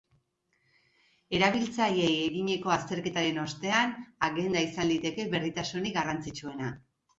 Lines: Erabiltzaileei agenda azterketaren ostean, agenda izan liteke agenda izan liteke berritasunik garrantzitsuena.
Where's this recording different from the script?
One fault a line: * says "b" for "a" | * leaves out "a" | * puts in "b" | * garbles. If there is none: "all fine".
* says "eginiko" for "agenda"
* leaves out "agenda izan liteke"